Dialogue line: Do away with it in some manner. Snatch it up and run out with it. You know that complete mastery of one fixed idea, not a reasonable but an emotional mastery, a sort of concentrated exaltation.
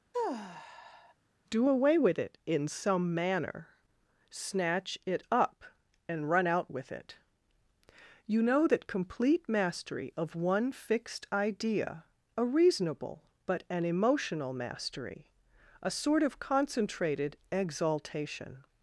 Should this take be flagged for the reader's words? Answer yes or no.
yes